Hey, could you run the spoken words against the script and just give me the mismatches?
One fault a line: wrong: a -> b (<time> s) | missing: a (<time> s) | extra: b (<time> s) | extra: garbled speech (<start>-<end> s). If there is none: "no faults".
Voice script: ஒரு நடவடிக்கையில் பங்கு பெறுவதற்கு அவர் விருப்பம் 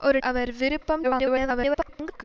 missing: நடவடிக்கையில் பங்கு பெறுவதற்கு (0.2 s)
extra: garbled speech (1.0-2.2 s)